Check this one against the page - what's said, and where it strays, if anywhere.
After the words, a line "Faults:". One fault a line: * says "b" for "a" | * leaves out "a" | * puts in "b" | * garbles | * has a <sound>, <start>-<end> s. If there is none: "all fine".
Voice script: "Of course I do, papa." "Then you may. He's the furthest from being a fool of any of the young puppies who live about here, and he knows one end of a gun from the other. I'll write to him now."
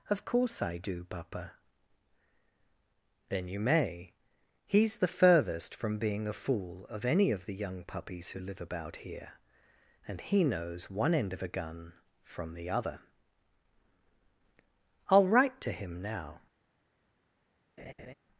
"Of course I do, papa." "Then you may. He's the furthest from being a fool of any of the young puppies who live about here, and he knows one end of a gun from the other. I'll write to him now."
Faults:
* has a laugh, 17.8-18.1 s